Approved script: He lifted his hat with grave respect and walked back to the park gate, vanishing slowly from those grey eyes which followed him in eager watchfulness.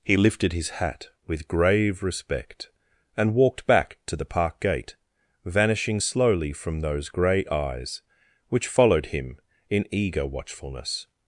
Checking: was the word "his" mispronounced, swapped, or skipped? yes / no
no